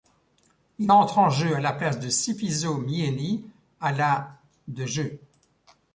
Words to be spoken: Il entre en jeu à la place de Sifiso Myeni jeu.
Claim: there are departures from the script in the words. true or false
true